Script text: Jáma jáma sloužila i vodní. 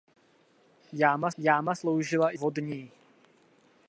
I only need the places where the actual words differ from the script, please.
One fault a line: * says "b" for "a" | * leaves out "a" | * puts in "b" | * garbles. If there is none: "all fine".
all fine